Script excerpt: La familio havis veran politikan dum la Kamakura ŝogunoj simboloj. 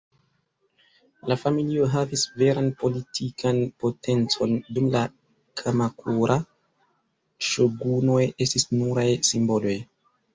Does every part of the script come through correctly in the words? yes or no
no